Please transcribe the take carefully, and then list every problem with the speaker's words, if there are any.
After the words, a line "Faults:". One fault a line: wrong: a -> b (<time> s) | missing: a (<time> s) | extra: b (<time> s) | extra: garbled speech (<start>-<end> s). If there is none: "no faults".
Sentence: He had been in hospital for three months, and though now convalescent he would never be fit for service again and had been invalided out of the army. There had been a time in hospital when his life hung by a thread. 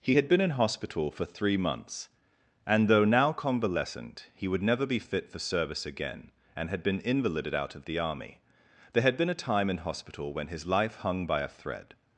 He had been in hospital for three months, and though now convalescent he would never be fit for service again and had been invalided out of the army. There had been a time in hospital when his life hung by a thread.
Faults:
no faults